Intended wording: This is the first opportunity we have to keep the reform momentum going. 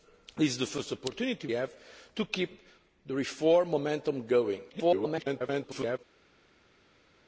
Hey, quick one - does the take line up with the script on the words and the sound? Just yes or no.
no